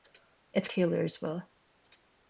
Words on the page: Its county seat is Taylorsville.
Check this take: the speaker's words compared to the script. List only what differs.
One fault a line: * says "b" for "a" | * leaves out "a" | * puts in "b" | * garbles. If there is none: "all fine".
* leaves out "county seat is"